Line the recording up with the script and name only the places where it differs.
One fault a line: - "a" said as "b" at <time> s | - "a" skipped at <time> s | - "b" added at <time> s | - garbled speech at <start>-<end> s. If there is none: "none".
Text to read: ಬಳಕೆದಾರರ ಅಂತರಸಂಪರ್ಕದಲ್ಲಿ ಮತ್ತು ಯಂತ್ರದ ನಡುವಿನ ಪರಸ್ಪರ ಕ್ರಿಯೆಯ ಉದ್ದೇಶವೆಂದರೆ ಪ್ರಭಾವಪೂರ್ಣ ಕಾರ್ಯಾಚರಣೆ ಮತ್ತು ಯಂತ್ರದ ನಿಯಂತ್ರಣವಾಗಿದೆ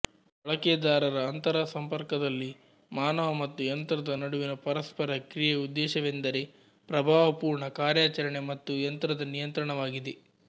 - "ಮಾನವ" added at 2.9 s